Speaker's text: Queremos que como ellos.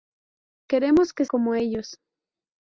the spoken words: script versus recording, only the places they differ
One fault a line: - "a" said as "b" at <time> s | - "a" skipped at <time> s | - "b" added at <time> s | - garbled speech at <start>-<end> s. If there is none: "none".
none